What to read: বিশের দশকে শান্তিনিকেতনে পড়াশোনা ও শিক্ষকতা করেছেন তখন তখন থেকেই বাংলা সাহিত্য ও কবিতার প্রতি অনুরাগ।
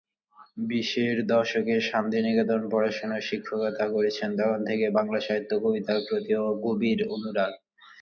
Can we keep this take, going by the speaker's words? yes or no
no